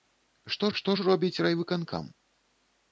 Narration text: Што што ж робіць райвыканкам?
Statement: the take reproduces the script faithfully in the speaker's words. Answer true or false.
true